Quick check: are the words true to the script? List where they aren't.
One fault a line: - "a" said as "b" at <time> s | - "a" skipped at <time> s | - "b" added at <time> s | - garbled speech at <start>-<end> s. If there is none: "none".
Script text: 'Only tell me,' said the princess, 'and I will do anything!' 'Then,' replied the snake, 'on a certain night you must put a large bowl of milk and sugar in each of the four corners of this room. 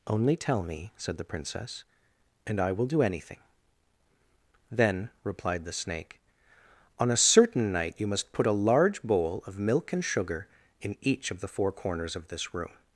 none